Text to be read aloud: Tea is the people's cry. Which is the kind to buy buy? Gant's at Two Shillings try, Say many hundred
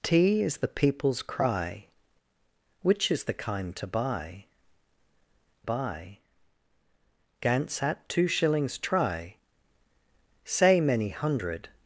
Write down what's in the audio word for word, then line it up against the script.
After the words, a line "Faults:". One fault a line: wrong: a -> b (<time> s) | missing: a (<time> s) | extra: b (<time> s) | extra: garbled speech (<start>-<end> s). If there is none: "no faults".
Tea is the people's cry. Which is the kind to buy buy? Gant's at Two Shillings try, Say many hundred
Faults:
no faults